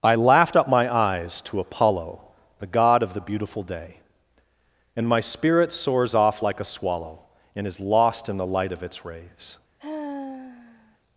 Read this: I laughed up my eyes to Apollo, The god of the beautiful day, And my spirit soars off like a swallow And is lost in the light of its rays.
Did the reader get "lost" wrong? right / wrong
right